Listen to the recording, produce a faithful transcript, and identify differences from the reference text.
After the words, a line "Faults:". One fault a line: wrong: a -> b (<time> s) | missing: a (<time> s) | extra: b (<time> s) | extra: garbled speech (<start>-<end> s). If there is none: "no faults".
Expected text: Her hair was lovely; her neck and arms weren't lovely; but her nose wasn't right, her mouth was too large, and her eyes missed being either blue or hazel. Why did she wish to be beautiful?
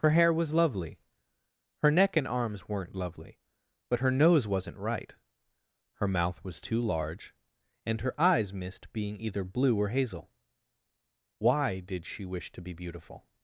Her hair was lovely; her neck and arms weren't lovely; but her nose wasn't right, her mouth was too large, and her eyes missed being either blue or hazel. Why did she wish to be beautiful?
Faults:
no faults